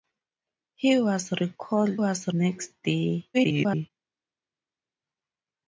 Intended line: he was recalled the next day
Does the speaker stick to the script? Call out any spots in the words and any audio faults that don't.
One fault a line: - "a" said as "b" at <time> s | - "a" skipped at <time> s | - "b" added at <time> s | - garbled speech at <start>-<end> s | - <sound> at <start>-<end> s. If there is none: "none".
- "the" said as "was" at 1.9 s
- garbled speech at 3.3-3.9 s